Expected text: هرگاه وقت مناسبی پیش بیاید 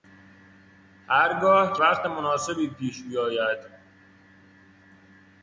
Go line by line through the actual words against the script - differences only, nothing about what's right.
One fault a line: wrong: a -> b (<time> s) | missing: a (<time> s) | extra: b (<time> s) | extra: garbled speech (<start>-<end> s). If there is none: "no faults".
no faults